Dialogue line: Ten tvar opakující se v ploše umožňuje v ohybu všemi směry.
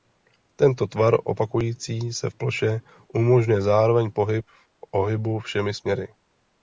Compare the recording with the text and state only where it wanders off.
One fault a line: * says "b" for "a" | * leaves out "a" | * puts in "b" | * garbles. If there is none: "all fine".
* says "Tento" for "Ten"
* puts in "zároveň pohyb"